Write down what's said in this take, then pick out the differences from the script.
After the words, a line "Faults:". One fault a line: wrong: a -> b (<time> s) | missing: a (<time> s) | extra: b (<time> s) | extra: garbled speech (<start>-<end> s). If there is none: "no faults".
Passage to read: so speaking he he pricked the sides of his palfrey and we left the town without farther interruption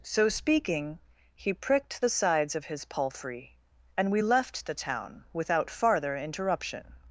so speaking he pricked the sides of his palfrey and we left the town without farther interruption
Faults:
missing: he (1.5 s)